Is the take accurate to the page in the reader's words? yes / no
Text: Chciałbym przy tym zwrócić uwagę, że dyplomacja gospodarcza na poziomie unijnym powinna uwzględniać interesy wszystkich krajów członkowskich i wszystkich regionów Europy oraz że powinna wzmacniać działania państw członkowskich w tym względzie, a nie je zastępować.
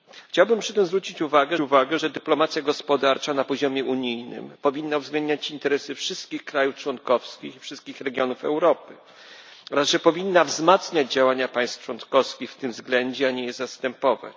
no